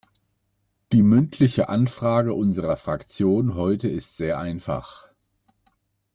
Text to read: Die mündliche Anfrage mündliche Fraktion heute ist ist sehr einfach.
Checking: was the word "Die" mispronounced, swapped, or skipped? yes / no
no